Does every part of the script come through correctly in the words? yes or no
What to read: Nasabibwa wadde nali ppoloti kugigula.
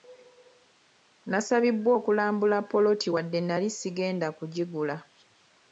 no